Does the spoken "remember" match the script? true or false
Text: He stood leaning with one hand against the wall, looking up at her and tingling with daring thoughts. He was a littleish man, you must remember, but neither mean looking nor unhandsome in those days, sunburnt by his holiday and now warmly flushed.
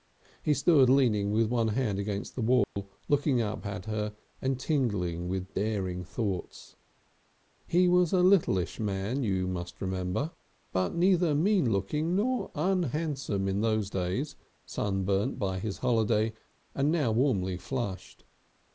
true